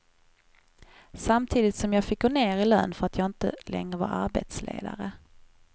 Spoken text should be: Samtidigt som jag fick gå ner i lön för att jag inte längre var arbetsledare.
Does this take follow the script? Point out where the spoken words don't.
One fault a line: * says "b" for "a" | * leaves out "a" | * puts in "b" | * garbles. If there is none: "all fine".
all fine